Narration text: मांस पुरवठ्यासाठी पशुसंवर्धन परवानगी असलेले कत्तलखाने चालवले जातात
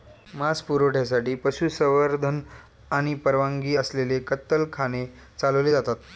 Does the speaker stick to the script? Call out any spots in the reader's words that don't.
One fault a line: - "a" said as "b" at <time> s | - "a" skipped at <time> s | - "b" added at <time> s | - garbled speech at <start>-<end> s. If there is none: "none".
- "आणि" added at 2.9 s